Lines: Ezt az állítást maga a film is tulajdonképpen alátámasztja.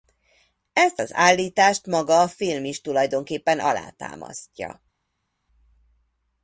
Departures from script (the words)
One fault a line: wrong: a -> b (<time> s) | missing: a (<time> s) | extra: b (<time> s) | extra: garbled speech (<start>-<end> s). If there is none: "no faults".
no faults